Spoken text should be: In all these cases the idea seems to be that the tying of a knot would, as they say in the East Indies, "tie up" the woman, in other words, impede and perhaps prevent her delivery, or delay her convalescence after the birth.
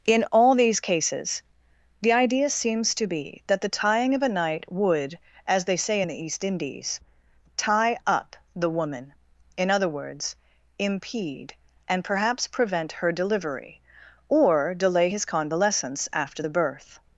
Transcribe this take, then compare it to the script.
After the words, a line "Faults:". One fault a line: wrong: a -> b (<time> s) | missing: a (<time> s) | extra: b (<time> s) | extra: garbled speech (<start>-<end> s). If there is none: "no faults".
In all these cases the idea seems to be that the tying of a night would, as they say in the East Indies, "tie up" the woman, in other words, impede and perhaps prevent her delivery, or delay his convalescence after the birth.
Faults:
wrong: knot -> night (4.3 s)
wrong: her -> his (15.1 s)